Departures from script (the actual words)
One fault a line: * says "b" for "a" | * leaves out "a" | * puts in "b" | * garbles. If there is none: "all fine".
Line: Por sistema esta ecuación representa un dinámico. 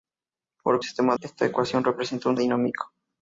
all fine